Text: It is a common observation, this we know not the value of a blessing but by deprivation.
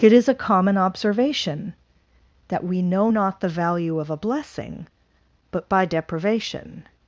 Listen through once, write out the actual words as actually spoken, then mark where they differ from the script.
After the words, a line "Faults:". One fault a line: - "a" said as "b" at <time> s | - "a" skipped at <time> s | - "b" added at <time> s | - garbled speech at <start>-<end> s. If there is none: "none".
It is a common observation, that we know not the value of a blessing but by deprivation.
Faults:
- "this" said as "that" at 2.5 s